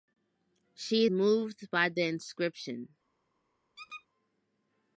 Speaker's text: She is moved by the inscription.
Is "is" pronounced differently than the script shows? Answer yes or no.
yes